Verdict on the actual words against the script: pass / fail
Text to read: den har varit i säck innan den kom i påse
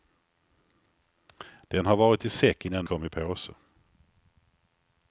fail